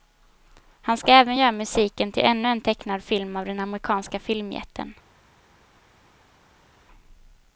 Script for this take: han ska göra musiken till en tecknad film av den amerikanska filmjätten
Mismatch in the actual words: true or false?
true